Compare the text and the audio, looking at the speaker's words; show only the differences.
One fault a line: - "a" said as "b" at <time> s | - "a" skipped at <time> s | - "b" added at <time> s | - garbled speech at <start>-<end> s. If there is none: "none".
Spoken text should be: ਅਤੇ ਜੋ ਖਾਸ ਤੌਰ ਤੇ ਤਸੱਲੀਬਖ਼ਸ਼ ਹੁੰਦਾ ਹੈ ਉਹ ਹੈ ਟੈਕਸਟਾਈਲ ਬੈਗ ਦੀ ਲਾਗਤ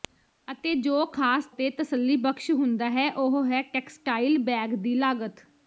- "ਤੌਰ" skipped at 1.4 s